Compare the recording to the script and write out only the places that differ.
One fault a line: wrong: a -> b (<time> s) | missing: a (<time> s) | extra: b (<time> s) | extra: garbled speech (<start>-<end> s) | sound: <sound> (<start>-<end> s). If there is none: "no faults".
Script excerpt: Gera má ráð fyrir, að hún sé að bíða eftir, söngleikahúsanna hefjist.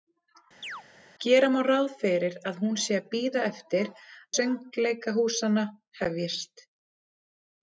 sound: chirp (0.6-0.8 s)